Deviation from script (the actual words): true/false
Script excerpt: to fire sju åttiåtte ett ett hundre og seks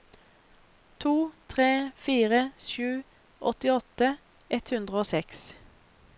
true